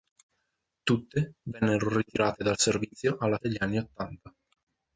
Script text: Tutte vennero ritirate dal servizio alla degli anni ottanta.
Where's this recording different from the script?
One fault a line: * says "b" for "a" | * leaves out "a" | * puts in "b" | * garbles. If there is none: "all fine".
all fine